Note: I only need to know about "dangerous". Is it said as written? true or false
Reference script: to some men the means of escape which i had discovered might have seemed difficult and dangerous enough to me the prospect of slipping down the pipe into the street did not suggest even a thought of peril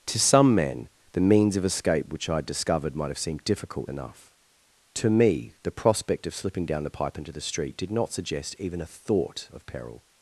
false